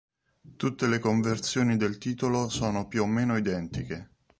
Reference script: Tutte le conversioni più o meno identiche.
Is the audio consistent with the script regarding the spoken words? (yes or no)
no